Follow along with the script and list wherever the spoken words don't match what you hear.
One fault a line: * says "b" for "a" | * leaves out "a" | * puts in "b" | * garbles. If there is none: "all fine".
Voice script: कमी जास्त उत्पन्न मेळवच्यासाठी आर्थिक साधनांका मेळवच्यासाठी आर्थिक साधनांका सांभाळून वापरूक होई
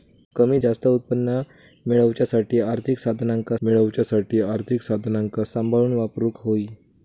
all fine